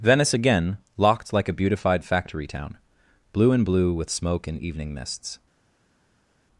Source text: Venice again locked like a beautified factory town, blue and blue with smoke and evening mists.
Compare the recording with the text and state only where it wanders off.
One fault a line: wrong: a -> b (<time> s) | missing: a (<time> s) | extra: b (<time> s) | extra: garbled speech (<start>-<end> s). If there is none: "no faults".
no faults